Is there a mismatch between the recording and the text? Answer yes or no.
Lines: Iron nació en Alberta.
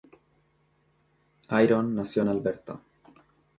no